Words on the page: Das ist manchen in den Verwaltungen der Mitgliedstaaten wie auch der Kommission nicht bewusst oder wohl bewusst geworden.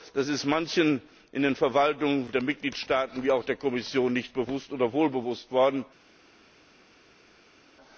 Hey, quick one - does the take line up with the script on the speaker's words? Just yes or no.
yes